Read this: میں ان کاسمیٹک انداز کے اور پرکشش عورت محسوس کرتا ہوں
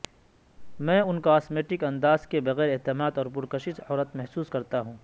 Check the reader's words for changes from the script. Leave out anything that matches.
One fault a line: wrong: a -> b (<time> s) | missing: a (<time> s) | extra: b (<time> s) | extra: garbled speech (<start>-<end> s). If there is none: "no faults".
extra: بغیر اعتماد (2.4 s)